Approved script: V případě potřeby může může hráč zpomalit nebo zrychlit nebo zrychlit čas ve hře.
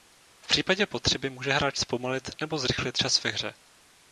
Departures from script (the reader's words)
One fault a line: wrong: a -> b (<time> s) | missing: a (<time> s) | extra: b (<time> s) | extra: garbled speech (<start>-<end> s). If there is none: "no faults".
missing: může (1.5 s)
missing: nebo zrychlit (3.0 s)